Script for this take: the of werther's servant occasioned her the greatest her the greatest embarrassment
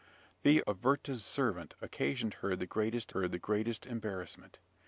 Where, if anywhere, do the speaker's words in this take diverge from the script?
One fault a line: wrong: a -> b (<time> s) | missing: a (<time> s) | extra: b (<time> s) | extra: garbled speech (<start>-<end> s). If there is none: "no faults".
no faults